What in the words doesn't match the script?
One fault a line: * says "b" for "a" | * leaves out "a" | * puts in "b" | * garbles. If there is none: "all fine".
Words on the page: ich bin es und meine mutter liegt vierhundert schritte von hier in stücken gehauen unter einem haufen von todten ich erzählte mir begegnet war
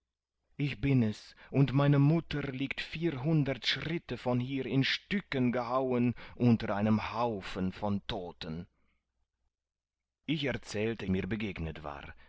all fine